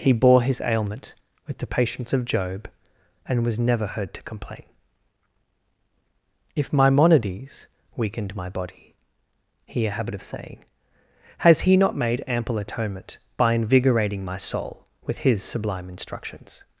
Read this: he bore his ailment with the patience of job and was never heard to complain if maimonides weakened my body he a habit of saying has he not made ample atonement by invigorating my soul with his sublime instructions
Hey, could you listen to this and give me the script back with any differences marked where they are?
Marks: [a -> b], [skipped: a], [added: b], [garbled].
he bore his ailment with the patience of job and was never heard to complain if maimonides weakened my body he a habit of saying has he not made ample atonement by invigorating my soul with his sublime instructions